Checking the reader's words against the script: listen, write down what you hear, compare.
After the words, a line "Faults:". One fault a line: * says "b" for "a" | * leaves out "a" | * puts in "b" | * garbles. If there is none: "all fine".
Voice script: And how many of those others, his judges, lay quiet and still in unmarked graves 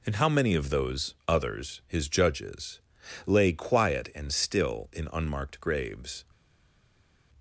And how many of those others, his judges, lay quiet and still in unmarked graves
Faults:
all fine